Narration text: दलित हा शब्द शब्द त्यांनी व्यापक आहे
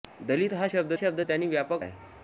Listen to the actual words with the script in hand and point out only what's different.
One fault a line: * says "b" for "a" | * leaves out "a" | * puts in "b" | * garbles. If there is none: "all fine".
all fine